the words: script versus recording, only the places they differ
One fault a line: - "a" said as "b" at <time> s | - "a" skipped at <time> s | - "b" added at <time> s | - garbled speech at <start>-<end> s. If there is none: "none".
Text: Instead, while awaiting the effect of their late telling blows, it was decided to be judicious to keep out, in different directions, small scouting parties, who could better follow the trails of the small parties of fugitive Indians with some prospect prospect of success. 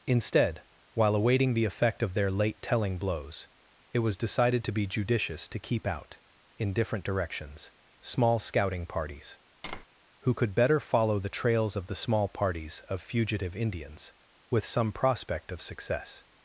- "prospect" skipped at 15.5 s